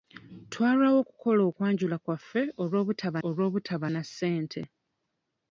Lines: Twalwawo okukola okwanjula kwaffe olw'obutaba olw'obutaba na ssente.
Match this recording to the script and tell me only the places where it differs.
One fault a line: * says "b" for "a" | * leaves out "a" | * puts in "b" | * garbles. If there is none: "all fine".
all fine